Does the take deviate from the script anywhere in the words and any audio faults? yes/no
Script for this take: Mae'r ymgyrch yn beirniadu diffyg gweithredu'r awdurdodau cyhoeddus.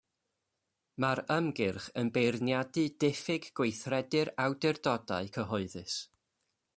no